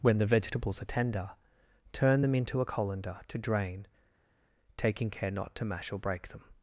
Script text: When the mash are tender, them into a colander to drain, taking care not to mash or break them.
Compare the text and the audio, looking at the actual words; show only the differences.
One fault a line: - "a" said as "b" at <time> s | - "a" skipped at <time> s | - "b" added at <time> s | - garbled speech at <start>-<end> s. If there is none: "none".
- "mash" said as "vegetables" at 0.2 s
- "turn" added at 1.9 s